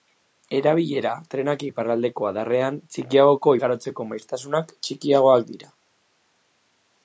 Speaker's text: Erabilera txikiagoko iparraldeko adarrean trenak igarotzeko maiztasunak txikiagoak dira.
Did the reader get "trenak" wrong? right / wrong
wrong